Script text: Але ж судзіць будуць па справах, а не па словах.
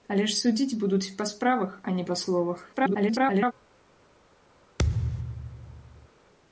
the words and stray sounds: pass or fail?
fail